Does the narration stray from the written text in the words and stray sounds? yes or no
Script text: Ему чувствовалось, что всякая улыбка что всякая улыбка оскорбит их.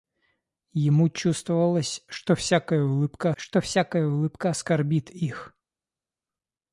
no